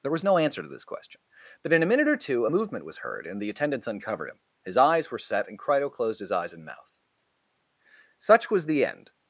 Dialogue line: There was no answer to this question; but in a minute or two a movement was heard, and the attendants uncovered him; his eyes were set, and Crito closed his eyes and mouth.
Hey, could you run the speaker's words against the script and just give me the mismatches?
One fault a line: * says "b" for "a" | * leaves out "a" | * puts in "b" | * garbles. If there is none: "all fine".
* puts in "Such was the end"